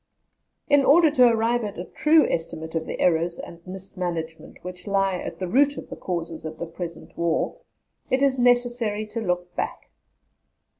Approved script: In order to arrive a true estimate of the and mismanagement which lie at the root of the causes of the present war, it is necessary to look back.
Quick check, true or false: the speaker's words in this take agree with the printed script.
false